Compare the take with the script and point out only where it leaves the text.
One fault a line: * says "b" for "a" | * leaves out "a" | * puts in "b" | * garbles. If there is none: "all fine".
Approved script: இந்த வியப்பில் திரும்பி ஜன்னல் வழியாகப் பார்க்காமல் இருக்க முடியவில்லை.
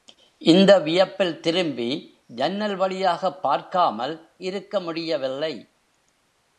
all fine